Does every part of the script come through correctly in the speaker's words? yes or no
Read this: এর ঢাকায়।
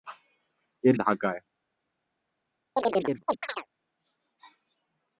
yes